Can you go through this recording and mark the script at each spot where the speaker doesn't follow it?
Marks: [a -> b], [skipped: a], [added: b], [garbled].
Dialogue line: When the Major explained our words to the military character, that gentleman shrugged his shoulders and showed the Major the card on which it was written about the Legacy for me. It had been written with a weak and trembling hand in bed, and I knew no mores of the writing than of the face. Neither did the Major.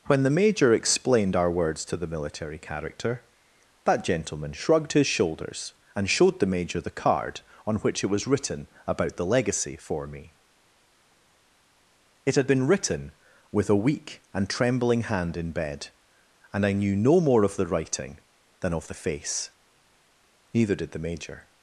When the Major explained our words to the military character, that gentleman shrugged his shoulders and showed the Major the card on which it was written about the Legacy for me. It had been written with a weak and trembling hand in bed, and I knew no [mores -> more] of the writing than of the face. Neither did the Major.